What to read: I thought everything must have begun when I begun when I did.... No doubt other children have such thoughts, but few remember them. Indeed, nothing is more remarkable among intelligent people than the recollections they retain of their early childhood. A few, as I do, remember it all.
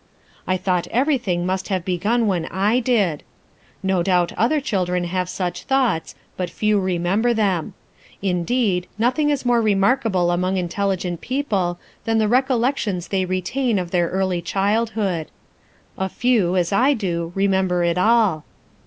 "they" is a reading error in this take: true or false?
false